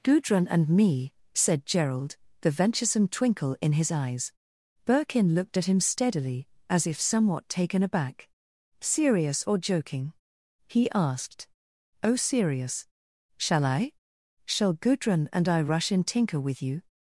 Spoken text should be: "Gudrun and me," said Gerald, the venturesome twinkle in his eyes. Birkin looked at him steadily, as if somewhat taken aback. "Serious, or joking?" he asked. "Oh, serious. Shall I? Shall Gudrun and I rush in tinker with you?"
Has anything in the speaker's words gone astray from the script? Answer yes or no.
no